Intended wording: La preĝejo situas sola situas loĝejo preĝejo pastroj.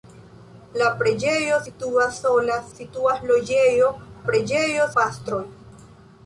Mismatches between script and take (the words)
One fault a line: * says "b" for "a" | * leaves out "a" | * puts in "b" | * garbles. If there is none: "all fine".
all fine